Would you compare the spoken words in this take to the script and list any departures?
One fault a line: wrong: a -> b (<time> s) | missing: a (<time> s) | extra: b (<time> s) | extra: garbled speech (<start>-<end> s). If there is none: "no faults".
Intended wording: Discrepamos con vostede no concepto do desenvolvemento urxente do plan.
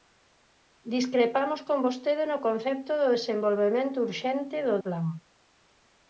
no faults